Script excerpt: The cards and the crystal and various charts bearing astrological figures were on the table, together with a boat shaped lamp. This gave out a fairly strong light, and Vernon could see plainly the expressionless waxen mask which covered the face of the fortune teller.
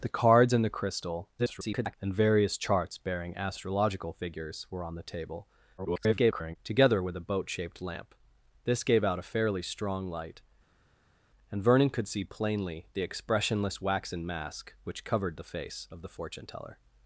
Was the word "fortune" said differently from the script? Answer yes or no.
no